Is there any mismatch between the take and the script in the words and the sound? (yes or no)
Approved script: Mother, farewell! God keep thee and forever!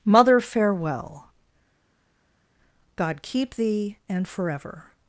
no